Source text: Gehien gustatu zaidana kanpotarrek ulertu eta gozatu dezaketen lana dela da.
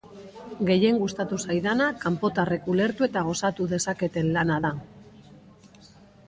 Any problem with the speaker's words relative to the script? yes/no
yes